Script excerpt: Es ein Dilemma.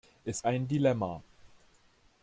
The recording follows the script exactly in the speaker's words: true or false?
true